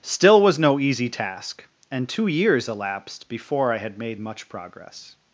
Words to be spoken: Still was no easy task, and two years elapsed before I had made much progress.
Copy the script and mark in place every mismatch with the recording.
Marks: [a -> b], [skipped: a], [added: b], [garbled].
Still was no easy task, and two years elapsed before I had made much progress.